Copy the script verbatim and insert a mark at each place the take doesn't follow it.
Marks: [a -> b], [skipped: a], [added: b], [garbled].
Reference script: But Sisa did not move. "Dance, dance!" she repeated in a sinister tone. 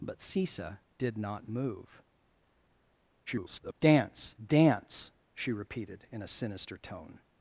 But Sisa did not move. [garbled] "Dance, dance!" she repeated in a sinister tone.